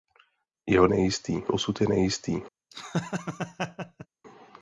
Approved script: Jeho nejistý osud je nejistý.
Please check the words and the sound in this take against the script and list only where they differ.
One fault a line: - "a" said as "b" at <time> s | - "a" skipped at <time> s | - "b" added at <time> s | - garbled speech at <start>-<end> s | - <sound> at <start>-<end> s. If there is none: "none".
- laugh at 2.7-4.1 s